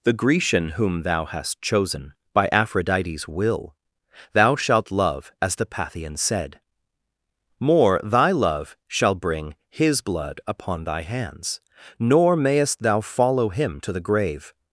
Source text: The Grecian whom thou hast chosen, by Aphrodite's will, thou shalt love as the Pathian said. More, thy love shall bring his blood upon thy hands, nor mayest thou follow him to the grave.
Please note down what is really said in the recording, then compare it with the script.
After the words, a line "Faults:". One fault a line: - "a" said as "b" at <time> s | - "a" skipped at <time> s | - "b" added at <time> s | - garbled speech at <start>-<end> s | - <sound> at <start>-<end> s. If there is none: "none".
The Grecian whom thou hast chosen, by Aphrodite's will, thou shalt love as the Pathian said. More, thy love shall bring his blood upon thy hands, nor mayest thou follow him to the grave.
Faults:
none